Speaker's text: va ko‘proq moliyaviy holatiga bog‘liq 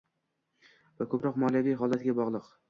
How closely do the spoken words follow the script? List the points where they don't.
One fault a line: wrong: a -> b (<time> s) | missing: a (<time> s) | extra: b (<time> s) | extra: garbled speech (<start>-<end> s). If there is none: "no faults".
no faults